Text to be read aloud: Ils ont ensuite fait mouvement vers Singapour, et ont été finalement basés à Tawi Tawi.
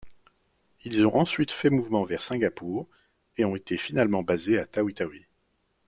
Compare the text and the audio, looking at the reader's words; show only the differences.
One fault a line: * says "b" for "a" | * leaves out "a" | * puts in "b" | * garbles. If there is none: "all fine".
all fine